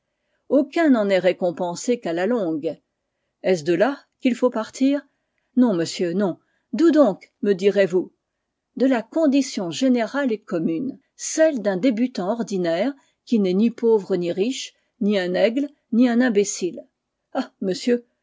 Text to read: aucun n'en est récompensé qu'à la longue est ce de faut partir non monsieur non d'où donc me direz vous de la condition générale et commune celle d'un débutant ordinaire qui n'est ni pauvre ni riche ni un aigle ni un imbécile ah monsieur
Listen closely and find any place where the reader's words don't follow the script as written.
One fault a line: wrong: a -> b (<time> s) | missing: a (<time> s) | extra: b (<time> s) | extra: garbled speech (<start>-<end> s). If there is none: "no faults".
extra: là qu'il (3.8 s)